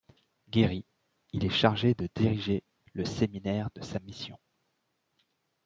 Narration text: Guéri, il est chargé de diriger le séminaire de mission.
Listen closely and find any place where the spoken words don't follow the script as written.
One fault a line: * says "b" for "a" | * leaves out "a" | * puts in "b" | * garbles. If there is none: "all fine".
* puts in "sa"